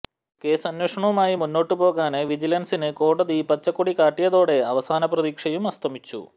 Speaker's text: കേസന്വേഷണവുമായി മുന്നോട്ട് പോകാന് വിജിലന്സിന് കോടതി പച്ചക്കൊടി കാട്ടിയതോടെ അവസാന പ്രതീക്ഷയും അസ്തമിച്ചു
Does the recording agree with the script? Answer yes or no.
yes